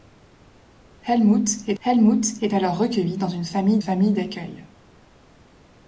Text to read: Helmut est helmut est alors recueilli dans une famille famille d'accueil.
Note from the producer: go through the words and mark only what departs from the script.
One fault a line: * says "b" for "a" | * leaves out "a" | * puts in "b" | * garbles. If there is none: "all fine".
all fine